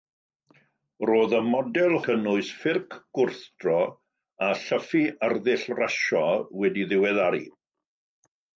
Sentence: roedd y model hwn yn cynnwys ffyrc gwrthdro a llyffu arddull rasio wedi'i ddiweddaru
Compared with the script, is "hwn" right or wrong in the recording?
wrong